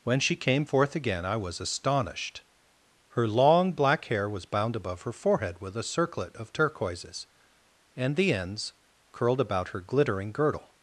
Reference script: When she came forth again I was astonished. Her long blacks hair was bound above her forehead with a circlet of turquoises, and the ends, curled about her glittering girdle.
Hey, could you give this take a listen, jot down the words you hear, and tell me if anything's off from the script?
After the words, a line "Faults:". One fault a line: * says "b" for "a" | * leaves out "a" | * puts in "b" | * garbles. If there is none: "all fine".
When she came forth again I was astonished. Her long black hair was bound above her forehead with a circlet of turquoises, and the ends, curled about her glittering girdle.
Faults:
* says "black" for "blacks"